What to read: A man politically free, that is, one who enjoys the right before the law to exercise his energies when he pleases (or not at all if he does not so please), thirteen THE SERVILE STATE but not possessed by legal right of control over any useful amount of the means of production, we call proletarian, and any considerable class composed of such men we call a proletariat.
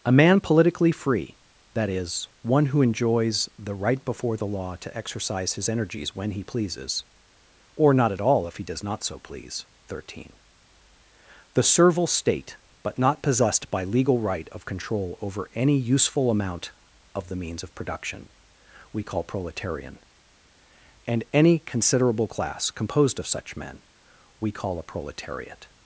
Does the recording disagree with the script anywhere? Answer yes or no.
no